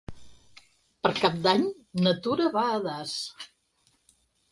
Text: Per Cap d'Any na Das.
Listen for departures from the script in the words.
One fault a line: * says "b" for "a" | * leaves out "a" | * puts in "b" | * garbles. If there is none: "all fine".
* puts in "Tura va a"